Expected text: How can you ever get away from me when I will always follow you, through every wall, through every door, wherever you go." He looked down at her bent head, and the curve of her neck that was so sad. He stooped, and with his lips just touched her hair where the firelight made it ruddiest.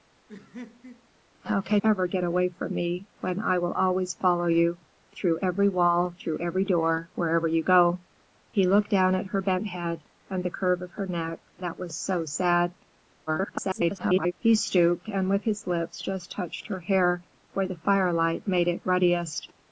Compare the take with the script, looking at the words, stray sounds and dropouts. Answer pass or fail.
fail